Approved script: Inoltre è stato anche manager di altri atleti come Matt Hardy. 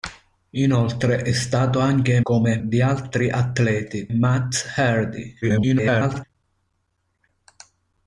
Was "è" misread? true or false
false